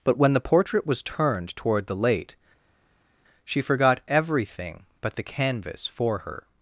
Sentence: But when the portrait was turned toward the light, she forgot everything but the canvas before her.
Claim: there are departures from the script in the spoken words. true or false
true